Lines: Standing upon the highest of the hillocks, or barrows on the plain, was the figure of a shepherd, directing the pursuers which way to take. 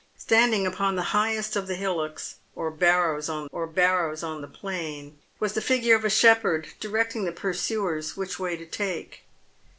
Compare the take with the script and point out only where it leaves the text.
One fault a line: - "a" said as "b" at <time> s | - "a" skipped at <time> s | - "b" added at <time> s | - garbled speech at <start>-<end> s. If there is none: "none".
- "or barrows on" added at 3.5 s